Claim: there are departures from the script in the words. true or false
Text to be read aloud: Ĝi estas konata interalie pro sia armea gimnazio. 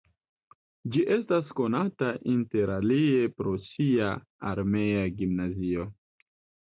false